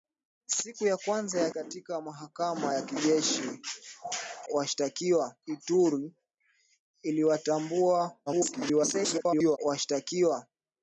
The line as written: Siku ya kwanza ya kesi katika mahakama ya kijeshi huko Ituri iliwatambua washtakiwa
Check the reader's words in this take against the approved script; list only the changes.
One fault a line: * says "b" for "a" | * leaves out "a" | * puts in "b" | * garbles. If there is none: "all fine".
* leaves out "kesi"
* says "washtakiwa" for "huko"
* garbles